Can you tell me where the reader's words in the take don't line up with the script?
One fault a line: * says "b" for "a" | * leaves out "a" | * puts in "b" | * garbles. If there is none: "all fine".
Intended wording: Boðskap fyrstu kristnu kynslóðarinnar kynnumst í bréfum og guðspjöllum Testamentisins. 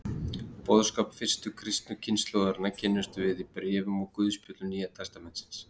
* puts in "við"
* puts in "Nýja"